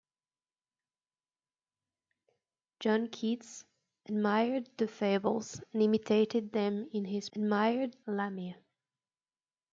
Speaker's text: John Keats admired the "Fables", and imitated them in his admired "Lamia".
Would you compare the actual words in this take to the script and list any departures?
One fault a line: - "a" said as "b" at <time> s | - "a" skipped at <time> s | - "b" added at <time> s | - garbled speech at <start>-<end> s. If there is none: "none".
none